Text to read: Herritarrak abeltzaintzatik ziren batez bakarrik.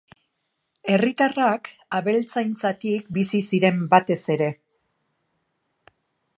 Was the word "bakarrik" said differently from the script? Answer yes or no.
yes